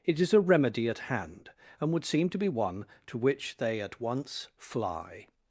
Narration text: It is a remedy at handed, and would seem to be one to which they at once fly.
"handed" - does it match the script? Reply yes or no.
no